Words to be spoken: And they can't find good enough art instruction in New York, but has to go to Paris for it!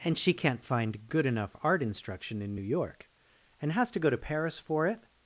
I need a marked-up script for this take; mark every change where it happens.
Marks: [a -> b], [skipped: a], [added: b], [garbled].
And [they -> she] can't find good enough art instruction in New York, [but -> and] has to go to Paris for it!